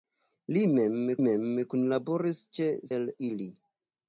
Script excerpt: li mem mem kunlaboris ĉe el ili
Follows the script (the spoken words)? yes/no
yes